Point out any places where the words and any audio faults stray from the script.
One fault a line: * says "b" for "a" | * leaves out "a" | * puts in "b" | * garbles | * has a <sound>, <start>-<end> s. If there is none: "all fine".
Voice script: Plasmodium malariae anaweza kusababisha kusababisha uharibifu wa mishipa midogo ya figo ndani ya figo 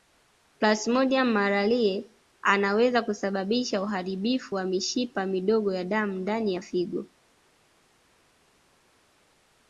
* leaves out "kusababisha"
* says "damu" for "figo"